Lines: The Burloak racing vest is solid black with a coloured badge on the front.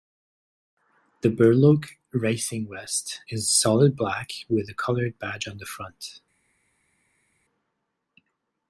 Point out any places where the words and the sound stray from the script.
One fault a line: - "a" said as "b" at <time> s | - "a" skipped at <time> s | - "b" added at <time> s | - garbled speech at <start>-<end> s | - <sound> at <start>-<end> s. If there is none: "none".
none